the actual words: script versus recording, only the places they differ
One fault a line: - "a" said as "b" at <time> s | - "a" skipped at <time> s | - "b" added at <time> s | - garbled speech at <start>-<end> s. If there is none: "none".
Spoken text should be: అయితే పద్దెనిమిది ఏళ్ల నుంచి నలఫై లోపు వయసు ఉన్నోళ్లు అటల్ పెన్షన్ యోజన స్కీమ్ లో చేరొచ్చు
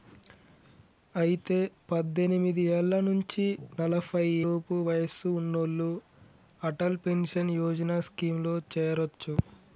none